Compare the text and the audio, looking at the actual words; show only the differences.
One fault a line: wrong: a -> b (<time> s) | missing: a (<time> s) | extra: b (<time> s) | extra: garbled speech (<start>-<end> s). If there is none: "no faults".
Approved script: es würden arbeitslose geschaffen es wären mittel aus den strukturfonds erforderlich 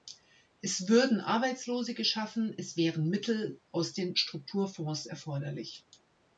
no faults